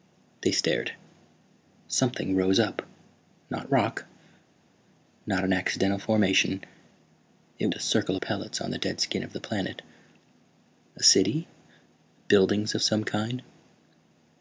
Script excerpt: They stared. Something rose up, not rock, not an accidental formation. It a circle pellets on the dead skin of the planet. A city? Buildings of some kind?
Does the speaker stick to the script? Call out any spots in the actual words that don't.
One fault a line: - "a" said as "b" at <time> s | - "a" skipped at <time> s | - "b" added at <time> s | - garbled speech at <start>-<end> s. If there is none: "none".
none